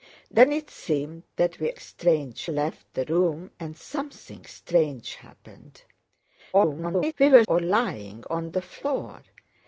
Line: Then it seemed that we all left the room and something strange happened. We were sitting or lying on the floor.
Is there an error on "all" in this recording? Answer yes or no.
yes